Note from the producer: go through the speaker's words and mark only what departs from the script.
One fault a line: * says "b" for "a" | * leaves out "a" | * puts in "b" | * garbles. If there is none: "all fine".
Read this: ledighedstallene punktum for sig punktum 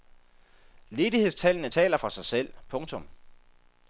* says "taler" for "punktum"
* puts in "selv"